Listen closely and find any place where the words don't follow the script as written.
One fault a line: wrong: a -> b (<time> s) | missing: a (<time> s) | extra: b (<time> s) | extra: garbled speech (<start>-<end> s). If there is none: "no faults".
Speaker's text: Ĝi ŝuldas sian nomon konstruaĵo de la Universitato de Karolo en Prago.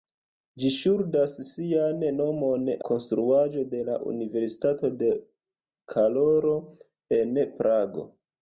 no faults